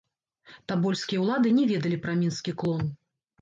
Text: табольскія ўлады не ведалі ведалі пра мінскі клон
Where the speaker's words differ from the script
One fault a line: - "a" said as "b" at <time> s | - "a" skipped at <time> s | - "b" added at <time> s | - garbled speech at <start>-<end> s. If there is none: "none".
- "ведалі" skipped at 2.0 s